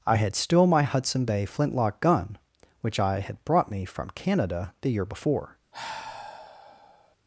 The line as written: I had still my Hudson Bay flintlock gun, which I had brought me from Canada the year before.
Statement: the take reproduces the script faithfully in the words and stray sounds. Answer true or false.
false